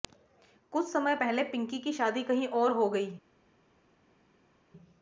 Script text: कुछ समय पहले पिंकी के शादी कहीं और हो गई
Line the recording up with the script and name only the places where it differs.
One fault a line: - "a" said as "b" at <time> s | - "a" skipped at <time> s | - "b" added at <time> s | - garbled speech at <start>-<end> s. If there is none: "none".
- "के" said as "की" at 1.8 s